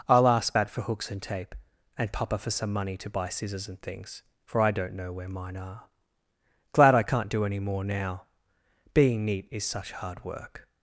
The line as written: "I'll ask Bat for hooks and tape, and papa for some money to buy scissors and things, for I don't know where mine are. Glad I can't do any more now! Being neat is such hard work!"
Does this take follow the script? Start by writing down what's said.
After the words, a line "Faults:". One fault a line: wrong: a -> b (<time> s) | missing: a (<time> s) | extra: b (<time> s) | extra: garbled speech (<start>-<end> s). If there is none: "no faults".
"I'll ask Bat for hooks and tape, and papa for some money to buy scissors and things, for I don't know where mine are. Glad I can't do any more now! Being neat is such hard work!"
Faults:
no faults